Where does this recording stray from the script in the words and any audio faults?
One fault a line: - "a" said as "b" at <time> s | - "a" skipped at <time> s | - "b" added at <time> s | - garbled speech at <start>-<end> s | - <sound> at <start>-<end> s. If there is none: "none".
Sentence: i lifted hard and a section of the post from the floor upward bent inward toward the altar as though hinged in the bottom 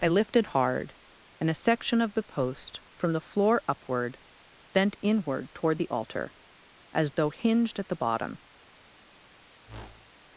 - "in" said as "at" at 7.8 s
- whoosh at 9.7-10.2 s